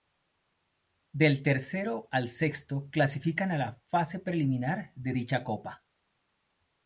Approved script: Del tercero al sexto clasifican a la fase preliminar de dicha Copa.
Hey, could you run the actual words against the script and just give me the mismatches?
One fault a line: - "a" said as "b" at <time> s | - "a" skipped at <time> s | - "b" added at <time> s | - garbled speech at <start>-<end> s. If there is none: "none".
none